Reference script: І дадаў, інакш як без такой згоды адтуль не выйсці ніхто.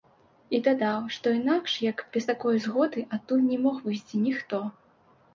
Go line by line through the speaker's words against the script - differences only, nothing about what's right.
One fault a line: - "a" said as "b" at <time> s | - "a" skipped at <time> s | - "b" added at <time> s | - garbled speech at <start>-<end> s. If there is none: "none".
- "што" added at 1.2 s
- "мог" added at 3.6 s